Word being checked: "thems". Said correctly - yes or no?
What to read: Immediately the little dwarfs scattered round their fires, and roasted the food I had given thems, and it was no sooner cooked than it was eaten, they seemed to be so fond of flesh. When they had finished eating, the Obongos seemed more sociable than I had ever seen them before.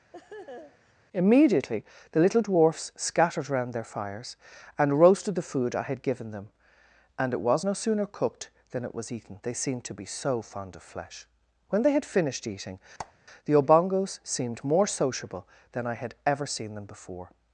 no